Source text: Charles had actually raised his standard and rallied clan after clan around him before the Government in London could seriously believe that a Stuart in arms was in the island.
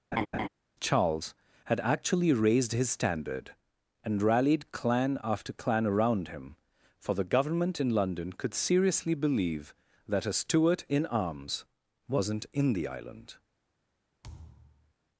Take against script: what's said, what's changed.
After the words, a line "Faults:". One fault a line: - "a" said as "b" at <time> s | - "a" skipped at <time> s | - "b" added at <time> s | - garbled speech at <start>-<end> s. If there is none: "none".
Charles had actually raised his standard and rallied clan after clan around him for the Government in London could seriously believe that a Stuart in arms wasn't in the island.
Faults:
- "before" said as "for" at 7.0 s
- "was" said as "wasn't" at 12.1 s